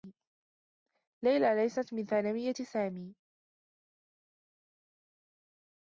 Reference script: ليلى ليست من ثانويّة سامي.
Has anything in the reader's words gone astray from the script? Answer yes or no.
no